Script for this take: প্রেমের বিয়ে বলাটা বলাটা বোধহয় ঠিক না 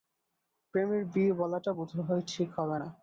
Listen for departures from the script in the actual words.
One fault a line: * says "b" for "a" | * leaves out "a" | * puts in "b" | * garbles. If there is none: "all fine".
* leaves out "বলাটা"
* puts in "হবে"